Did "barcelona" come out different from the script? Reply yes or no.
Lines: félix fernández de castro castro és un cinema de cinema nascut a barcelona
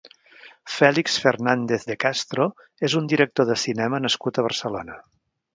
no